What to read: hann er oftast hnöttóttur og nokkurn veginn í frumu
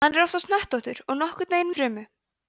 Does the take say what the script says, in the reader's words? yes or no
yes